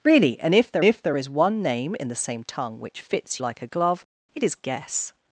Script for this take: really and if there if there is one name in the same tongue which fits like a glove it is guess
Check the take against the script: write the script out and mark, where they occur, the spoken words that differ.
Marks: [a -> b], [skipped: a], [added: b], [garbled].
really and if there if there is one name in the same tongue which fits like a glove it is guess